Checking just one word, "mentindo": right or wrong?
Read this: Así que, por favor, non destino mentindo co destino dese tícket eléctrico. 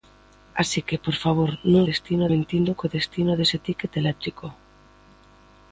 right